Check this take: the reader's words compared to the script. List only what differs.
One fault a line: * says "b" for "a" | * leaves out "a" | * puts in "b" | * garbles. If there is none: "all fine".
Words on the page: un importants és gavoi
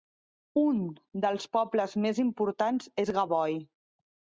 * puts in "dels pobles més"